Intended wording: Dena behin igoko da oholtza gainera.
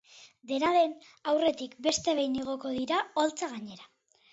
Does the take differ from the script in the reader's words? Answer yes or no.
yes